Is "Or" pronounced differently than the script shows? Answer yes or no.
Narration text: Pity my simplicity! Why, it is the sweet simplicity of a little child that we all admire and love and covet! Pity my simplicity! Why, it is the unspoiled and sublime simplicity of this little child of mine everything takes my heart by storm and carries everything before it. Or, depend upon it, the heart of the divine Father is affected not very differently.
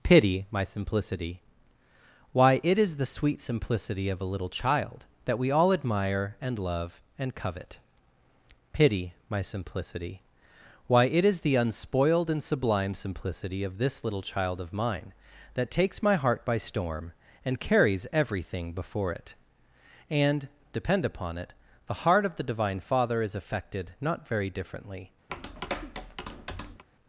yes